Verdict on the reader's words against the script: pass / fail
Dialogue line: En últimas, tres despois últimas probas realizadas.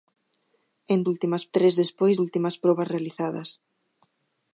pass